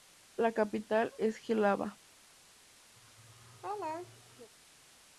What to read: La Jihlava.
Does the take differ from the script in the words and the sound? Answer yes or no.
yes